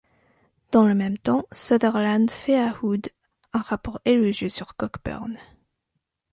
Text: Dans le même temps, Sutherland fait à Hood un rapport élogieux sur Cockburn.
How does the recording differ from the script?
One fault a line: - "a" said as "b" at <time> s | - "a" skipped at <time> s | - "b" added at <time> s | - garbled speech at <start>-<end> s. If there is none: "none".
none